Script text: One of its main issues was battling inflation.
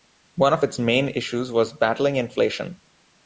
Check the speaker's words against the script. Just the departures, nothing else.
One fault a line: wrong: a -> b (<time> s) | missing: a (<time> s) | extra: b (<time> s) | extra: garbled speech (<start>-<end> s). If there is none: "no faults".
no faults